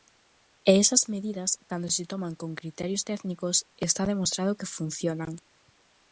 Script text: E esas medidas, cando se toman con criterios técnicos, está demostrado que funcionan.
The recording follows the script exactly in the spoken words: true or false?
true